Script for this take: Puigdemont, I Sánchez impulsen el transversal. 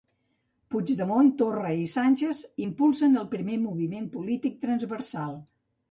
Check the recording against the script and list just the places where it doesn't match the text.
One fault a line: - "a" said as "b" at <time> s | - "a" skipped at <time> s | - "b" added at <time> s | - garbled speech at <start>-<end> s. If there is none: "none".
- "Torra" added at 1.4 s
- "primer moviment polític" added at 3.4 s